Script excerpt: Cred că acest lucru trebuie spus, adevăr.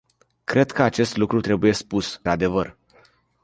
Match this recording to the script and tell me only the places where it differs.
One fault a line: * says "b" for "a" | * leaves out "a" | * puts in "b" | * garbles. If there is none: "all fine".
all fine